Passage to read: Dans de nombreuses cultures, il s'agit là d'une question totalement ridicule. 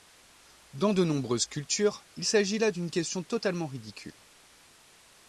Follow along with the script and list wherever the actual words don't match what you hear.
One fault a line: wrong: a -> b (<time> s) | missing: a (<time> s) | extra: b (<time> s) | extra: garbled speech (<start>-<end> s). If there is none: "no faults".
no faults